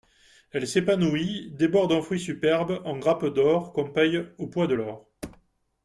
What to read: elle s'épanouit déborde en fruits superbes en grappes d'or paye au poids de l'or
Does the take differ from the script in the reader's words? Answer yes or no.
yes